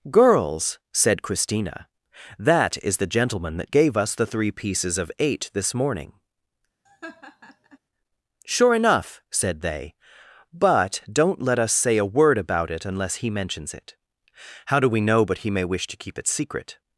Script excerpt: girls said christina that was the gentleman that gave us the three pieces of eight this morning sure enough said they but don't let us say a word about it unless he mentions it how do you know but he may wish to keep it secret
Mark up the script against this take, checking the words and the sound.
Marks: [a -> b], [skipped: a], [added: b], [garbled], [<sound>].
girls said christina that [was -> is] the gentleman that gave us the three pieces of eight this morning [laugh] sure enough said they but don't let us say a word about it unless he mentions it how do [you -> we] know but he may wish to keep it secret